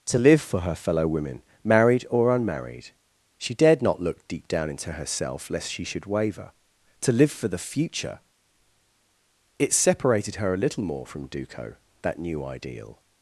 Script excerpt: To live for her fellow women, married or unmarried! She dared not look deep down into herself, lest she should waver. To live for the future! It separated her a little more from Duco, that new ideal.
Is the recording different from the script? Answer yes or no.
no